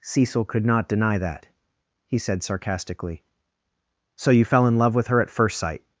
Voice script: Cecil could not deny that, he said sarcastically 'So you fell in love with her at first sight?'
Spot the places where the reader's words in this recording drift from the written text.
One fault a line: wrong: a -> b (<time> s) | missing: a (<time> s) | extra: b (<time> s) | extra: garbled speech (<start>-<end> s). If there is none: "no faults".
no faults